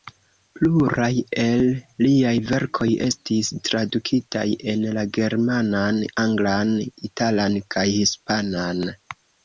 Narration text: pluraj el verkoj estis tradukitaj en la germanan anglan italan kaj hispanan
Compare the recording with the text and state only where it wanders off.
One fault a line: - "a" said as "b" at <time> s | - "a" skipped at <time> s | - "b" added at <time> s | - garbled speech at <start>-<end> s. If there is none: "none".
- "liaj" added at 2.0 s